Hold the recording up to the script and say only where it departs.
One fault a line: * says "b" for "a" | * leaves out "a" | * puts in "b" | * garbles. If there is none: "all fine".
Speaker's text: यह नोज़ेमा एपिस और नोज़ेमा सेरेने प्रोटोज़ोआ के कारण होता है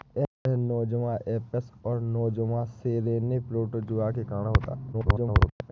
* garbles